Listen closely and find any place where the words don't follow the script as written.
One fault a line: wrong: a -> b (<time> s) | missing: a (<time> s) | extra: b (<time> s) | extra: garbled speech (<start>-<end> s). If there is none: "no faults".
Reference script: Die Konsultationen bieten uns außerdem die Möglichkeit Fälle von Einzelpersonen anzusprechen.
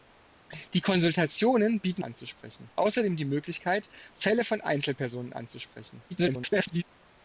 wrong: uns -> anzusprechen (2.0 s)
extra: garbled speech (6.1-6.8 s)